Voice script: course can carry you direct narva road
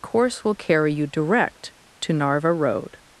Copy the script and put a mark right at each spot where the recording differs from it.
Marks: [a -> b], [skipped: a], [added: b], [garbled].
course [can -> will] carry you direct [added: to] narva road